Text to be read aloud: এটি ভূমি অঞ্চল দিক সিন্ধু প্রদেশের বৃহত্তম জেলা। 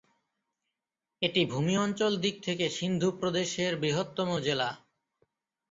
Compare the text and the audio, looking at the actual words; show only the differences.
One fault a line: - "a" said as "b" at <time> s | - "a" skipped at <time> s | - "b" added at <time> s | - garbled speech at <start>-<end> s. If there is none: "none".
- "থেকে" added at 2.4 s